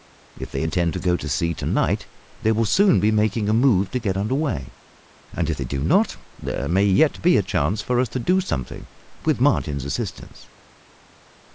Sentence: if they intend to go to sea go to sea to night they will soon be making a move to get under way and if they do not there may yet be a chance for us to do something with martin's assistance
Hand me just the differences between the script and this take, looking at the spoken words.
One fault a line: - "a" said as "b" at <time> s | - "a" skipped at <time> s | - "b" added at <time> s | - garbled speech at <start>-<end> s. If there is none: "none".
- "go to sea" skipped at 1.5 s